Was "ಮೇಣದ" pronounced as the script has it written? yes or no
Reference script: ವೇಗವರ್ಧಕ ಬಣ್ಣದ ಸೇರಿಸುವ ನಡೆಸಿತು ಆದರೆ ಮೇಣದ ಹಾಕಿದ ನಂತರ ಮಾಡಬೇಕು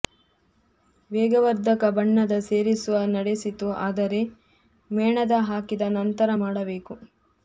yes